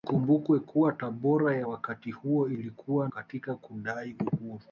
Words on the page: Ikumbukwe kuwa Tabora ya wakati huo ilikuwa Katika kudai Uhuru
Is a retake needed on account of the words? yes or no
no